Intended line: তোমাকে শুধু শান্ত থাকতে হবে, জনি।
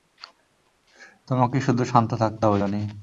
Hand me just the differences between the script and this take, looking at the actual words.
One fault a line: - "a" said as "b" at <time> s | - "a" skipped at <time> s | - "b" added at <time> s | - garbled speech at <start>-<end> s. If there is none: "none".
none